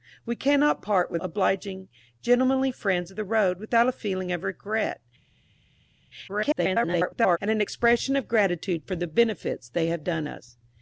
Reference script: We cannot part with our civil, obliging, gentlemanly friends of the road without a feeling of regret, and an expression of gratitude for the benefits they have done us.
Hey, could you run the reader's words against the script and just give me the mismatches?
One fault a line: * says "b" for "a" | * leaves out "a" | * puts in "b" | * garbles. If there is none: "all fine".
* leaves out "our civil"
* garbles